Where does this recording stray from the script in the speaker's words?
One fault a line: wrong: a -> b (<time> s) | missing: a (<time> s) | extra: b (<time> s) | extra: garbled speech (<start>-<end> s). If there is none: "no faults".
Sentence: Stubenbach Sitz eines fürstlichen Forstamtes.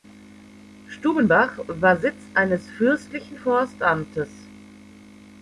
extra: war (1.7 s)